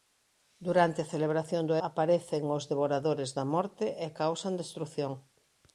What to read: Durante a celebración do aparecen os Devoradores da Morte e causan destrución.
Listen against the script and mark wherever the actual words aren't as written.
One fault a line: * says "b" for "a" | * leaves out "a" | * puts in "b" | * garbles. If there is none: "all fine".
all fine